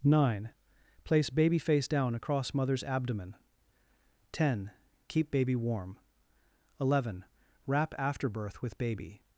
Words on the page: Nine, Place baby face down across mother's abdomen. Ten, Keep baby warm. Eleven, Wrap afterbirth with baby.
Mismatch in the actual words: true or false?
false